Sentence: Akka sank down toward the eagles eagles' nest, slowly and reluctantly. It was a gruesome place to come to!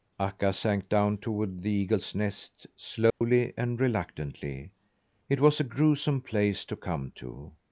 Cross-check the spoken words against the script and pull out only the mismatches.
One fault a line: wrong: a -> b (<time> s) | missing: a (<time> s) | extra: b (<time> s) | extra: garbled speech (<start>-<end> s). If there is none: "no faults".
missing: eagles (2.1 s)